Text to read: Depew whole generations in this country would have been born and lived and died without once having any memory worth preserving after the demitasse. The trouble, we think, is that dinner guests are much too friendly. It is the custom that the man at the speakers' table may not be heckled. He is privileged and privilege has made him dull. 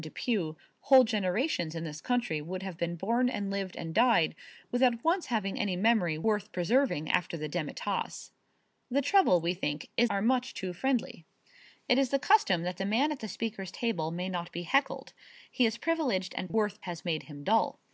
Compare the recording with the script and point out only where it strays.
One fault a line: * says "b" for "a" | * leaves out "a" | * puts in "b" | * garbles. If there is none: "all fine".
* leaves out "that dinner guests"
* says "worth" for "privilege"